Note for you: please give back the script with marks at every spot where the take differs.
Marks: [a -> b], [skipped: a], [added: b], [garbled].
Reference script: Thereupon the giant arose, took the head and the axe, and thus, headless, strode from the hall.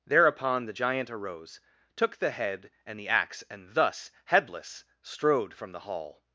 Thereupon the giant arose, took the head and the axe, and thus, headless, strode from the hall.